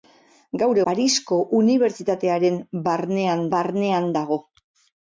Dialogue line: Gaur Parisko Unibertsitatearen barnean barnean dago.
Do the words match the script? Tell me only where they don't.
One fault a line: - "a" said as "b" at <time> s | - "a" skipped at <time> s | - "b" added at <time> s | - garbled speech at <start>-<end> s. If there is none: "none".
none